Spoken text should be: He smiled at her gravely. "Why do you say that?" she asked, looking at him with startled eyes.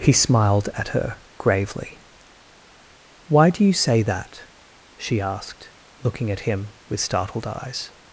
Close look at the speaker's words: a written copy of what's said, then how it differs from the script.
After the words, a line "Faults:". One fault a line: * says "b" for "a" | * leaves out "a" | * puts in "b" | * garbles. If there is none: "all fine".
He smiled at her gravely. "Why do you say that?" she asked, looking at him with startled eyes.
Faults:
all fine